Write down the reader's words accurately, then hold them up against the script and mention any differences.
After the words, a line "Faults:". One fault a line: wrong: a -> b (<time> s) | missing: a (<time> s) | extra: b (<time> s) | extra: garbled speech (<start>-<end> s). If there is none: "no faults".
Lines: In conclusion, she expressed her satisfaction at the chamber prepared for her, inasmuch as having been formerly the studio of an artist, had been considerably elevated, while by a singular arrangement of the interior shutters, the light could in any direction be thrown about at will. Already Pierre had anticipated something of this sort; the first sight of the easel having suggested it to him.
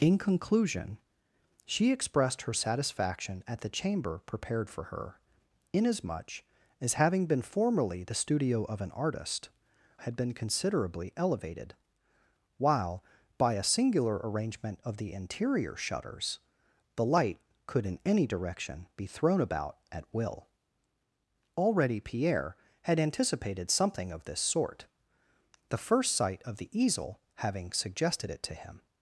In conclusion, she expressed her satisfaction at the chamber prepared for her, inasmuch as having been formerly the studio of an artist, had been considerably elevated, while by a singular arrangement of the interior shutters, the light could in any direction be thrown about at will. Already Pierre had anticipated something of this sort; the first sight of the easel having suggested it to him.
Faults:
no faults